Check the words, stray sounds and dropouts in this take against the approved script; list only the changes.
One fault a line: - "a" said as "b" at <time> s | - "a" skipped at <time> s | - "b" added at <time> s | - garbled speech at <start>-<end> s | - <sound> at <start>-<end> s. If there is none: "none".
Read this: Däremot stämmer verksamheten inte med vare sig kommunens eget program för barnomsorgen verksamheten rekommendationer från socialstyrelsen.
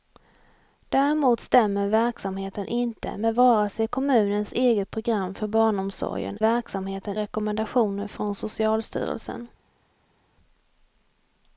none